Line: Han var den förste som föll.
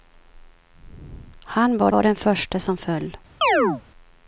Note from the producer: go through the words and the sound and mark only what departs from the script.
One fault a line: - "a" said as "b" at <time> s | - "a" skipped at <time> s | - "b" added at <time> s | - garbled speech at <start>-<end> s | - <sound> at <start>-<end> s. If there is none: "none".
- "var" added at 1.9 s
- chirp at 3.4-3.8 s